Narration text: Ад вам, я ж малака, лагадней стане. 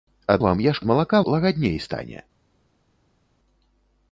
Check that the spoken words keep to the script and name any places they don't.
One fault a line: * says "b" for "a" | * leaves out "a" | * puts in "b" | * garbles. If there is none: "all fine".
all fine